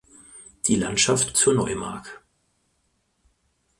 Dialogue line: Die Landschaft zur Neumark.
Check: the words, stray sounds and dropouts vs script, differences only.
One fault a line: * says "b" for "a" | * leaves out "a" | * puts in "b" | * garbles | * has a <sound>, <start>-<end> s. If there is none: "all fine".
all fine